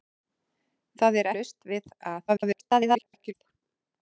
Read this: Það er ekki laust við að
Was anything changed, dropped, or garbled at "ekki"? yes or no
yes